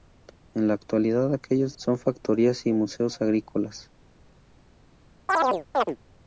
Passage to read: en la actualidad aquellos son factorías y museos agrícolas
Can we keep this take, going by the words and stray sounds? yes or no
no